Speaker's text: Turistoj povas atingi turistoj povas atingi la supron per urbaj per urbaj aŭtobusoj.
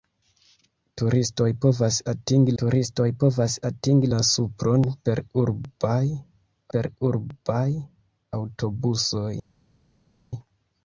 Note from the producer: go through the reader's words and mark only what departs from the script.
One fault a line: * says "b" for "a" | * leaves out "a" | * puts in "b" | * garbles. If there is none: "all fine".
all fine